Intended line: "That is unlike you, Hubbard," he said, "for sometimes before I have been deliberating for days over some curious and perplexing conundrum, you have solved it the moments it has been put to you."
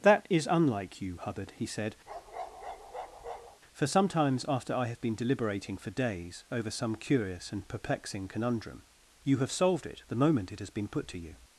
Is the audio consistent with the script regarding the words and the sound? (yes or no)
no